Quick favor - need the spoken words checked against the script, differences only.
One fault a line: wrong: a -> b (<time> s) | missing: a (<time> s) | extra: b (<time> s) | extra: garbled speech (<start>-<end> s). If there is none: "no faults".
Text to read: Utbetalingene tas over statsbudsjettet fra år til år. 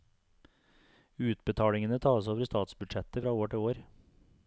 no faults